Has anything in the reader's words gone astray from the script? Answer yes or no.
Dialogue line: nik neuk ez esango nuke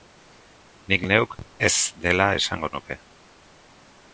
yes